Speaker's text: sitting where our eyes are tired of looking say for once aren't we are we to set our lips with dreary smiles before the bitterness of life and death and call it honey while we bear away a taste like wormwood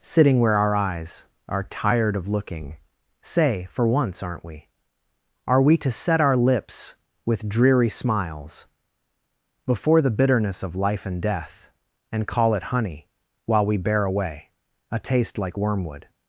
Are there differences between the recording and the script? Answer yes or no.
no